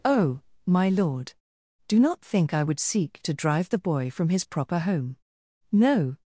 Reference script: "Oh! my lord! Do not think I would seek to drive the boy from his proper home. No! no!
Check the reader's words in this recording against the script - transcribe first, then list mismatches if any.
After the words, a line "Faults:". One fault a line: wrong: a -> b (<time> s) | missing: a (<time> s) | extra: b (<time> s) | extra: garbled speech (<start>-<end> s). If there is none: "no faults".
"Oh! my lord! Do not think I would seek to drive the boy from his proper home. No!
Faults:
missing: no (6.2 s)